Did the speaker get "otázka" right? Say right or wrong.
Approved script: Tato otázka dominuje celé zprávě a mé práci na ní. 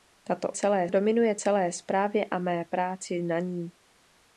wrong